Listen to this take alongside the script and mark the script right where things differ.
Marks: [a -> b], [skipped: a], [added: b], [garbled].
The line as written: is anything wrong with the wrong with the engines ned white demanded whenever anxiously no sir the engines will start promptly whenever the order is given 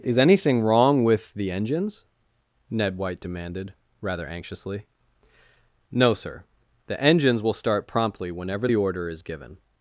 is anything wrong with the [skipped: wrong with the] engines ned white demanded [whenever -> rather] anxiously no sir the engines will start promptly whenever the order is given